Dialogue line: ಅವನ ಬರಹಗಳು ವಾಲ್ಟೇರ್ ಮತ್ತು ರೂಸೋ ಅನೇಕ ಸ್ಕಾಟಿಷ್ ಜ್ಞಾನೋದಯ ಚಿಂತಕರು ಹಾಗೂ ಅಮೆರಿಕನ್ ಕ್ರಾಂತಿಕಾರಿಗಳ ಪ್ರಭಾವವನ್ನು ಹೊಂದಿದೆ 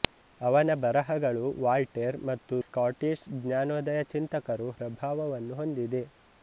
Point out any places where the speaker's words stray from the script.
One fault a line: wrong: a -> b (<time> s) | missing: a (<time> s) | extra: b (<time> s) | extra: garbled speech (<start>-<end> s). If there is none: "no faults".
missing: ರೂಸೋ ಅನೇಕ (2.5 s)
missing: ಹಾಗೂ ಅಮೆರಿಕನ್ ಕ್ರಾಂತಿಕಾರಿಗಳ (4.7 s)